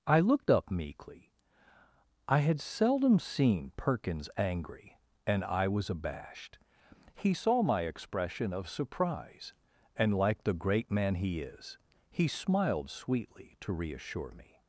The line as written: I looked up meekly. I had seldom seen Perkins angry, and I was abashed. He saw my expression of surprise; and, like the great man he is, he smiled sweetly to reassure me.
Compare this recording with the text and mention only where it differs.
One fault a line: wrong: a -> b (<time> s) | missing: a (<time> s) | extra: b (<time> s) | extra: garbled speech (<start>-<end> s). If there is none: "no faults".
no faults